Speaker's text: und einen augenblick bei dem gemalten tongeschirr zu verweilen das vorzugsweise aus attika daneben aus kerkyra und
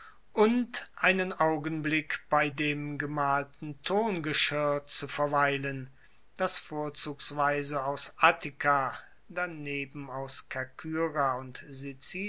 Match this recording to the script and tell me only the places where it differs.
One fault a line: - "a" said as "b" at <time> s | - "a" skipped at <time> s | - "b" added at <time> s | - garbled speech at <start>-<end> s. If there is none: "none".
none